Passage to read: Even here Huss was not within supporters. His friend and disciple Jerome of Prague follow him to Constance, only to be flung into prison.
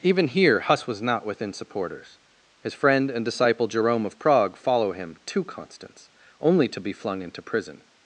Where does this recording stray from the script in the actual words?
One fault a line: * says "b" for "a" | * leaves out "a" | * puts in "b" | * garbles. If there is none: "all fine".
all fine